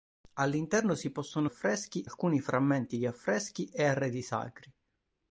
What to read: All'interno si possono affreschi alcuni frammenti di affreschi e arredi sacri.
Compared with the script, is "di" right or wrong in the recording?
right